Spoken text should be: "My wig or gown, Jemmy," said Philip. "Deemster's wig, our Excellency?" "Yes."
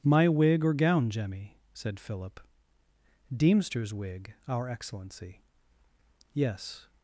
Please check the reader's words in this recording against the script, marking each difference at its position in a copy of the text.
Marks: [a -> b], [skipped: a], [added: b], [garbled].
"My wig or gown, Jemmy," said Philip. "Deemster's wig, our Excellency?" "Yes."